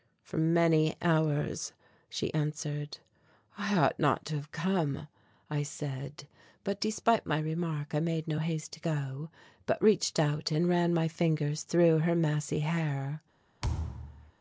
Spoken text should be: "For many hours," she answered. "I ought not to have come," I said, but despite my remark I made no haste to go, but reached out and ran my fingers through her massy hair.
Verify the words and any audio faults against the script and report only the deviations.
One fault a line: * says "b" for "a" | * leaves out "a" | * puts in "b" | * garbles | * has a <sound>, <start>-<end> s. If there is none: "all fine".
* has a thud, 13.6-14.3 s